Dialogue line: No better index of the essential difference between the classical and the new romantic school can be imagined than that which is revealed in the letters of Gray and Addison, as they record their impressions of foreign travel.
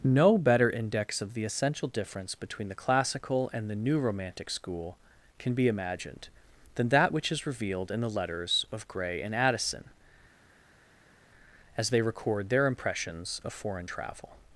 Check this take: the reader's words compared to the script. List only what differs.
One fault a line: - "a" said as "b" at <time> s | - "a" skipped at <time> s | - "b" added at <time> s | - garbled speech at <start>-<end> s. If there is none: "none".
none